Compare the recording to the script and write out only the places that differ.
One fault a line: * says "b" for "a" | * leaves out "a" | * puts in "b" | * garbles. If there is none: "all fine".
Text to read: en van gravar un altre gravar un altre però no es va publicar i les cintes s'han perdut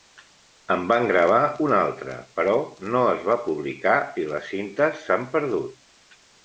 * leaves out "gravar un altre"